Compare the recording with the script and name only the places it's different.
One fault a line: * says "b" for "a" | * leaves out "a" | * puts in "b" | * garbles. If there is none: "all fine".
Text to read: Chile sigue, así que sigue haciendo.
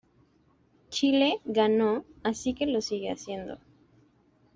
* says "ganó" for "sigue"
* puts in "lo"